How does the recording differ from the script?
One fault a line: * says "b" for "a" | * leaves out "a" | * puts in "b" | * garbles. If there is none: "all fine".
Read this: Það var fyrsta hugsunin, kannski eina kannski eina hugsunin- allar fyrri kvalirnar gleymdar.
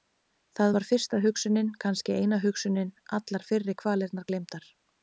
* leaves out "kannski eina"